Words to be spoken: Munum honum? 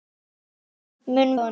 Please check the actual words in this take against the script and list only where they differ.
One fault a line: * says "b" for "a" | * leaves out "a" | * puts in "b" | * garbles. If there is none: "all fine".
all fine